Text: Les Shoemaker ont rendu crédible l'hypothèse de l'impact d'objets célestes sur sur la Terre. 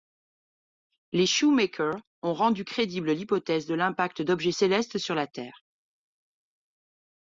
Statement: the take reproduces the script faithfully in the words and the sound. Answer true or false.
false